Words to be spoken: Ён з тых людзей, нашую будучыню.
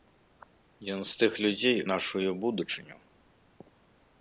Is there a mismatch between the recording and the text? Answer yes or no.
no